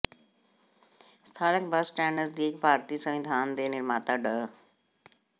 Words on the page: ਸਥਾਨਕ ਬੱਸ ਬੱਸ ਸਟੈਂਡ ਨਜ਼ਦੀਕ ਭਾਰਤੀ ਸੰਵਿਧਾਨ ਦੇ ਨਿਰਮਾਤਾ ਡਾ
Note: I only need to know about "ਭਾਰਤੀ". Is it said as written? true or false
true